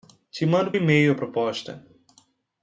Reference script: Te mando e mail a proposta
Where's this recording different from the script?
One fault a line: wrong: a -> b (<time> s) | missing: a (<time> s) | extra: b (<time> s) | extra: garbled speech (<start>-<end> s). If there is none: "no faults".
no faults